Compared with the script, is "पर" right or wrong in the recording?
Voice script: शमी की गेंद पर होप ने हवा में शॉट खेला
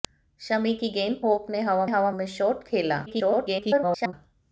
wrong